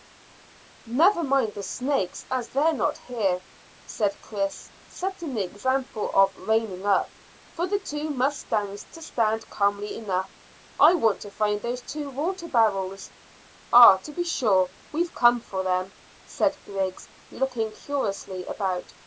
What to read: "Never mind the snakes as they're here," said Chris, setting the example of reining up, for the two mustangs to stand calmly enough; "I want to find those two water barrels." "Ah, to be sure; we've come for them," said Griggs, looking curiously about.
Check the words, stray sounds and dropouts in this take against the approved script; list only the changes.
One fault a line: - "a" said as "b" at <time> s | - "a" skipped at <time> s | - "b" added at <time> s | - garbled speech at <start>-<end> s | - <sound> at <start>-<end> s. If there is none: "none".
- "not" added at 2.7 s